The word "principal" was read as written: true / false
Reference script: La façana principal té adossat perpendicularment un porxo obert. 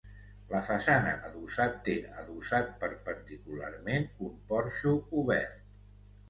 false